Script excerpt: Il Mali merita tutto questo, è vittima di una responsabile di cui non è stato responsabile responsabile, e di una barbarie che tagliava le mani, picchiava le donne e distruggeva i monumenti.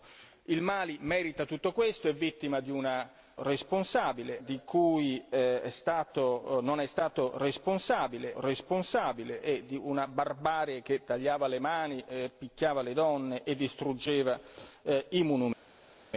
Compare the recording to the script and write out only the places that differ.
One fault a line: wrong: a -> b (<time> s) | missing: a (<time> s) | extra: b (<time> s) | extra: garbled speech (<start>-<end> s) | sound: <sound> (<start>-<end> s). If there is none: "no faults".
no faults